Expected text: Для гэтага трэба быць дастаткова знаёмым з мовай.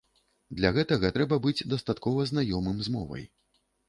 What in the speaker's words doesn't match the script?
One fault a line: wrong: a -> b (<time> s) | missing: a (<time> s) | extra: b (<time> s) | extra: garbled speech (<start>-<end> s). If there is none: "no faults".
no faults